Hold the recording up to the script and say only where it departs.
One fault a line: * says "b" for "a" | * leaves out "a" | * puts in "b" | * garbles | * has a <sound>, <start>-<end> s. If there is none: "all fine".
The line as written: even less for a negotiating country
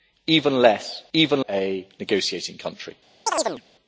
* says "even" for "for"
* has a chirp, 3.3-3.6 s